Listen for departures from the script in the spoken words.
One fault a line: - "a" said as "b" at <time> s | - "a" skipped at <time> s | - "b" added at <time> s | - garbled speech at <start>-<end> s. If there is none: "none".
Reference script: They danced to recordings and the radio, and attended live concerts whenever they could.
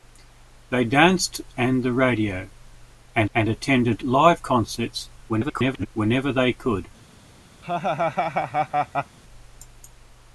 - "to recordings" skipped at 1.4 s
- "and" added at 3.3 s
- garbled speech at 5.3-5.9 s